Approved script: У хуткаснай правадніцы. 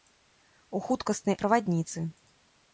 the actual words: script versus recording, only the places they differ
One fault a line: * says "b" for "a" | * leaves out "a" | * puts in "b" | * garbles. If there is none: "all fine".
all fine